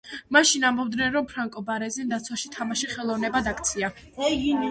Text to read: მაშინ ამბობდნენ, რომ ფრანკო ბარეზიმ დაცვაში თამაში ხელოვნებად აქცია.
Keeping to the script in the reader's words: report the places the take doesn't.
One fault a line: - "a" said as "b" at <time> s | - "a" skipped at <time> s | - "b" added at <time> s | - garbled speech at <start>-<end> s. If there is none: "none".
none